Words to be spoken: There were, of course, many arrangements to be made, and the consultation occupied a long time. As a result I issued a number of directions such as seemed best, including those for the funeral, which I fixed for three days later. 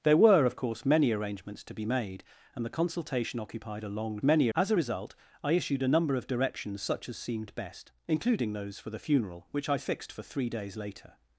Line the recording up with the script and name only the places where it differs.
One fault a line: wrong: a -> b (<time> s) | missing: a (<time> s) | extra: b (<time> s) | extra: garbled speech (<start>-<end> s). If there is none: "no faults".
wrong: time -> many (4.2 s)